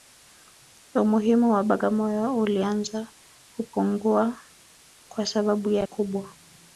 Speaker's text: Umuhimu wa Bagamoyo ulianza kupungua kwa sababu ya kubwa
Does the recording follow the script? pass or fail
pass